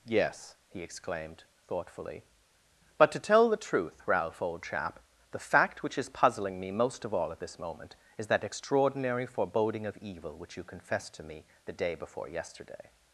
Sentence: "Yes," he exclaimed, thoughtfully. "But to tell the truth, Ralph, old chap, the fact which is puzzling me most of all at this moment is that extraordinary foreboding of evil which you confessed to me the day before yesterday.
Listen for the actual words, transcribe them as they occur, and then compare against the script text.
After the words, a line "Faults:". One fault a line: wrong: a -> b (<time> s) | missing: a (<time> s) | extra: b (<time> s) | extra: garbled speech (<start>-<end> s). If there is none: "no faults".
"Yes," he exclaimed, thoughtfully. "But to tell the truth, Ralph, old chap, the fact which is puzzling me most of all at this moment is that extraordinary foreboding of evil which you confessed to me the day before yesterday.
Faults:
no faults